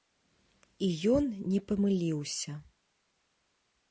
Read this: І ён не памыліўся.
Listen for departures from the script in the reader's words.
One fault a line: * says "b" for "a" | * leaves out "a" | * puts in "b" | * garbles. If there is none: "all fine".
all fine